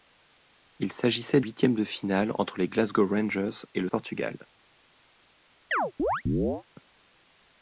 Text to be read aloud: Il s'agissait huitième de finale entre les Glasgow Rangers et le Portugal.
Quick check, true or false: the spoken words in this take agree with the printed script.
true